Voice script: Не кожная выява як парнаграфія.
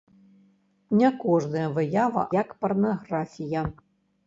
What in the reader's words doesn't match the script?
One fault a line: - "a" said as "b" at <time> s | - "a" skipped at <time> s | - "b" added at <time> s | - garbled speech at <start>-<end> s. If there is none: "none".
none